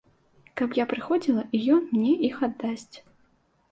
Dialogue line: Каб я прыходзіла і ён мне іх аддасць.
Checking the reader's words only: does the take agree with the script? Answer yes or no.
yes